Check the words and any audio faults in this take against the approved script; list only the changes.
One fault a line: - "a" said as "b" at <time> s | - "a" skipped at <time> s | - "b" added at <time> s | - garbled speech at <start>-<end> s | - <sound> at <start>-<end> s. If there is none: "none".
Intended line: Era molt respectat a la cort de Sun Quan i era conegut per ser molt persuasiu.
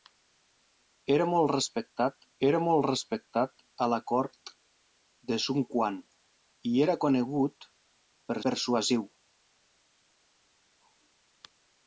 - "era molt respectat" added at 2.5 s
- "ser molt" skipped at 8.4 s